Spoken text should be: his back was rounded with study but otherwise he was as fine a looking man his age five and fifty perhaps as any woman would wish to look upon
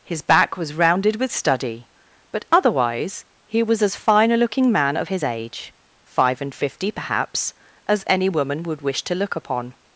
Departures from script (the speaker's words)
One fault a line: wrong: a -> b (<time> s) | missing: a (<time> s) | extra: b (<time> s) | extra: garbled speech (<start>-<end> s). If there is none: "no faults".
extra: of (5.0 s)